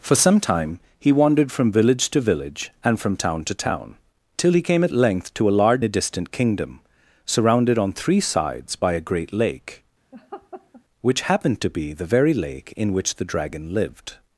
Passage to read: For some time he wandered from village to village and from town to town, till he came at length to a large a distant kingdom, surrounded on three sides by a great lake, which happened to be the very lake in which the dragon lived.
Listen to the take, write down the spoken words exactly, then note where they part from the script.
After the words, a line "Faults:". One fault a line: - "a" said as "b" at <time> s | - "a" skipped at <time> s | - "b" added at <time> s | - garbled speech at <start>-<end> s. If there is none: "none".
For some time he wandered from village to village and from town to town, till he came at length to a large a distant kingdom, surrounded on three sides by a great lake, which happened to be the very lake in which the dragon lived.
Faults:
none